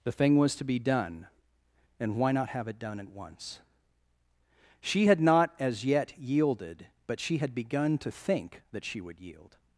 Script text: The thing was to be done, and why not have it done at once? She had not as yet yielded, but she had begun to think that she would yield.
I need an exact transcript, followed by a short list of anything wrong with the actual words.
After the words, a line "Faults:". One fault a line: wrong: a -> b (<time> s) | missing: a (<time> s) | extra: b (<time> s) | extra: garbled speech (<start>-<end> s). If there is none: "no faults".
The thing was to be done, and why not have it done at once? She had not as yet yielded, but she had begun to think that she would yield.
Faults:
no faults